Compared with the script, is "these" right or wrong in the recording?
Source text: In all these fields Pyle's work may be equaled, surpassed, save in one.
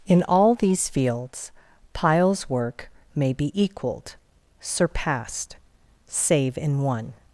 right